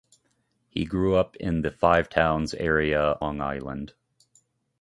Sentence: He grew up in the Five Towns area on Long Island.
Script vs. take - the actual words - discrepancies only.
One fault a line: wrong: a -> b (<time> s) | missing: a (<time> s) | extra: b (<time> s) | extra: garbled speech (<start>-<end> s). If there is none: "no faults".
missing: on (3.2 s)